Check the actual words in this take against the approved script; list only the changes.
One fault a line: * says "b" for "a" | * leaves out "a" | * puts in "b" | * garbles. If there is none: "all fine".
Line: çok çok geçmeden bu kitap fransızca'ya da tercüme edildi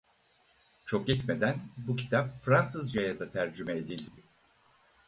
* leaves out "çok"